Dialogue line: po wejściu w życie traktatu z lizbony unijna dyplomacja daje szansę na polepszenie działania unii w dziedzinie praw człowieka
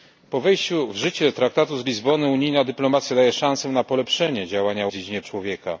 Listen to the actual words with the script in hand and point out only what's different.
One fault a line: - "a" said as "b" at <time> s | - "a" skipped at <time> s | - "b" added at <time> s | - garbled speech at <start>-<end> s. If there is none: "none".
- "unii" skipped at 4.9 s
- "praw" skipped at 5.2 s